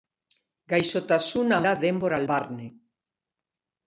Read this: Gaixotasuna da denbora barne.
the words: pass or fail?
pass